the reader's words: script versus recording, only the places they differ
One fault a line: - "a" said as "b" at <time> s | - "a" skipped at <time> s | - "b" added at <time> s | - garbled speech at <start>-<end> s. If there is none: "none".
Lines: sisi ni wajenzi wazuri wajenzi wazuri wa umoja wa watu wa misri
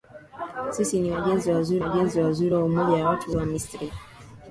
none